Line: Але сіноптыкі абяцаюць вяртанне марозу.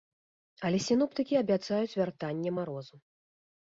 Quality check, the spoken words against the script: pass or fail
pass